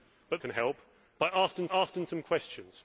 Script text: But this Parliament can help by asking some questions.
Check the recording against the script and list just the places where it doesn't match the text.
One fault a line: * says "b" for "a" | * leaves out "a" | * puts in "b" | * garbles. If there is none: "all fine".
* leaves out "this Parliament"
* puts in "asking"